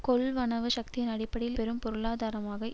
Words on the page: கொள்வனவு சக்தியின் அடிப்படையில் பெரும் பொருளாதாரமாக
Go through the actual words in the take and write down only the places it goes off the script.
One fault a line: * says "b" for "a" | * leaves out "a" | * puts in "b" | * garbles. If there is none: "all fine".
all fine